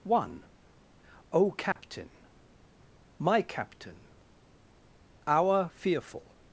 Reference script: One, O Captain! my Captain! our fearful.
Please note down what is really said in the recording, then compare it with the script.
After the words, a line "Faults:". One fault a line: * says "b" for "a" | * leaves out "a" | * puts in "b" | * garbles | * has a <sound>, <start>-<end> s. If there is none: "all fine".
One, O Captain! my Captain! our fearful.
Faults:
* has a dropout, 1.7-1.8 s